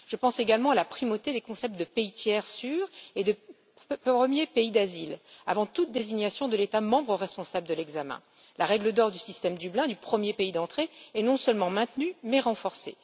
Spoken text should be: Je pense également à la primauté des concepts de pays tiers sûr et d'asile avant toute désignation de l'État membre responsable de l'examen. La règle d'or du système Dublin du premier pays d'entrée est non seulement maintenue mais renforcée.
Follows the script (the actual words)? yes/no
no